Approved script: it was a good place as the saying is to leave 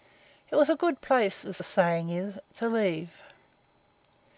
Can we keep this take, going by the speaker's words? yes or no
yes